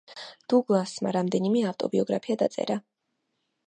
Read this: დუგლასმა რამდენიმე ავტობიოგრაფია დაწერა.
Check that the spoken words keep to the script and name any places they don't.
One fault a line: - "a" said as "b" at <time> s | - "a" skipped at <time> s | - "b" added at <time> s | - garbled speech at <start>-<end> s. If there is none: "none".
none